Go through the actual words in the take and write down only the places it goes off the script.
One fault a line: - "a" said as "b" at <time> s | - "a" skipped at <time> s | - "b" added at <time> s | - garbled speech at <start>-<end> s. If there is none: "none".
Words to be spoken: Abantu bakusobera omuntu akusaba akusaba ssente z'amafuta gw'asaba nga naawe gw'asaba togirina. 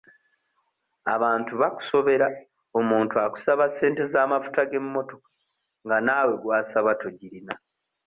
- "akusaba" skipped at 3.6 s
- "gw'asaba" said as "g'emmotoka" at 4.7 s